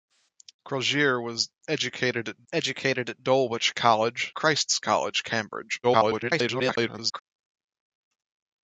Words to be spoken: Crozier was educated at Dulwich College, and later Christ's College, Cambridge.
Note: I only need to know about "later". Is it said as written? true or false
false